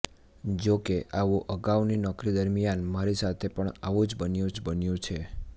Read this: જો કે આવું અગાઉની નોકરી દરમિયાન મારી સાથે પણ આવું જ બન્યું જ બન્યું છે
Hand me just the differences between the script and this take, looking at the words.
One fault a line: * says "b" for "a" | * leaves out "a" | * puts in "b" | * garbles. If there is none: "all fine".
all fine